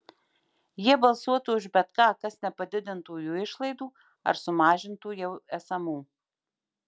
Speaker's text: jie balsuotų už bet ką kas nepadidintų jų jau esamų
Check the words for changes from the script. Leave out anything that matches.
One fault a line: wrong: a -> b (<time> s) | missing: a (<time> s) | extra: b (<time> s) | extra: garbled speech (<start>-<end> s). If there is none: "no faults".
extra: išlaidų ar sumažintų (3.4 s)